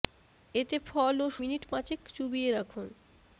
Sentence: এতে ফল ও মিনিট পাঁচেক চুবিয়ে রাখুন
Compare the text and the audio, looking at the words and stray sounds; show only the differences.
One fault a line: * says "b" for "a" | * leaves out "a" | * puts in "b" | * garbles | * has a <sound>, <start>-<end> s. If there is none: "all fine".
all fine